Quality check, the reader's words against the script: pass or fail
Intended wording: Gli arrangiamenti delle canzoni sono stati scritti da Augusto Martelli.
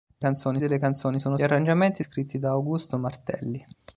fail